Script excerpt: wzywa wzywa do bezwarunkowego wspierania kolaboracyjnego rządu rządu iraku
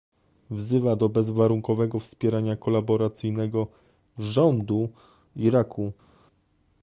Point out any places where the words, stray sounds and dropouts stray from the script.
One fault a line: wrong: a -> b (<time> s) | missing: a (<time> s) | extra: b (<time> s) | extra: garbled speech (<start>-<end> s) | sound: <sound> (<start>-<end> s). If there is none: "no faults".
missing: wzywa (0.9 s)
missing: rządu (4.9 s)